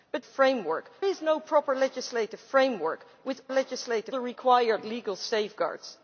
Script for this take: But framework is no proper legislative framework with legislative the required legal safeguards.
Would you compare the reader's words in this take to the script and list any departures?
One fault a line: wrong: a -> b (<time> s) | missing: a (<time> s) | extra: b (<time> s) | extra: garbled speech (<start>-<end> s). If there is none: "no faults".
no faults